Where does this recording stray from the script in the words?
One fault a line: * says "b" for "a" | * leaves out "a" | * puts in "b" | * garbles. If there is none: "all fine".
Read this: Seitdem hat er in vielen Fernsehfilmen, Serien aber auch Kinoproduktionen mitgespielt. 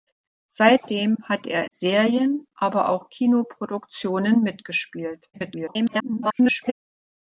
* leaves out "in vielen Fernsehfilmen"
* garbles